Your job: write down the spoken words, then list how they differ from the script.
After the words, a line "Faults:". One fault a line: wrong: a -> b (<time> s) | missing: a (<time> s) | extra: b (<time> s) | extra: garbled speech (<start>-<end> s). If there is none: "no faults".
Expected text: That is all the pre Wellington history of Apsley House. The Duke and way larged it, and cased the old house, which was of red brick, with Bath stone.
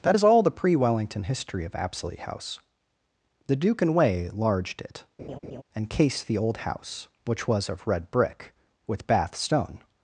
That is all the pre Wellington history of Apsley House. The Duke and way larged it, and cased the old house, which was of red brick, with Bath stone.
Faults:
no faults